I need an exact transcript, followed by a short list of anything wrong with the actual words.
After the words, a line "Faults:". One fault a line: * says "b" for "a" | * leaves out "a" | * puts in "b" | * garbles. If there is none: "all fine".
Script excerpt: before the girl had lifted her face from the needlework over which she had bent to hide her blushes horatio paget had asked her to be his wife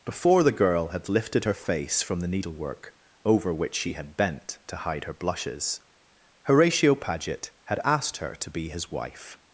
before the girl had lifted her face from the needlework over which she had bent to hide her blushes horatio paget had asked her to be his wife
Faults:
all fine